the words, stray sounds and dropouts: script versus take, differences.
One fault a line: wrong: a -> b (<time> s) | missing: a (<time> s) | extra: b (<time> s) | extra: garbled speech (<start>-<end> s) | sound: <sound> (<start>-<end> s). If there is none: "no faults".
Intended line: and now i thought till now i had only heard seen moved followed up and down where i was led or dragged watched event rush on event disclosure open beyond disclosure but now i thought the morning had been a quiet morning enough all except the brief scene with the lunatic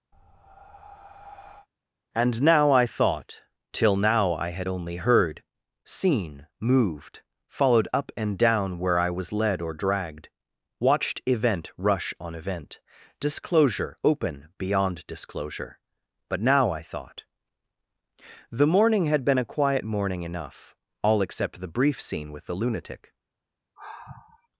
sound: breath (0.1-1.7 s)
sound: sigh (23.8-24.5 s)